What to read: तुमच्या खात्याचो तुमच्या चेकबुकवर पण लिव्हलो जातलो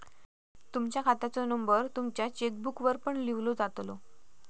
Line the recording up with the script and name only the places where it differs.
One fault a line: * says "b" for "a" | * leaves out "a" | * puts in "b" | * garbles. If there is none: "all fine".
* puts in "नंबर"